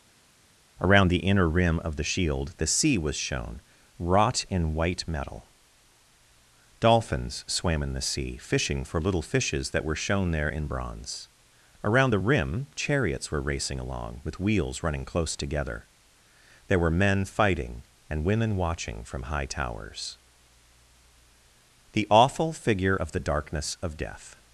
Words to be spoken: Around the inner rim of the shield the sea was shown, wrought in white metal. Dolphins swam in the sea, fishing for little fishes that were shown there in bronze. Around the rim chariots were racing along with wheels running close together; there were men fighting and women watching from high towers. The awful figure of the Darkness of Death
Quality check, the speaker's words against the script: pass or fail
pass